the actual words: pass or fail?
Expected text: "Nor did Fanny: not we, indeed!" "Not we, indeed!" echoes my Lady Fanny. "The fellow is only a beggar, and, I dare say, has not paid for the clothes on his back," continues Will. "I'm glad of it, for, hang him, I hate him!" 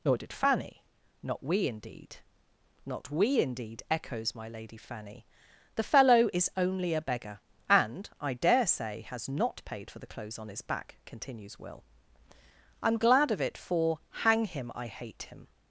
pass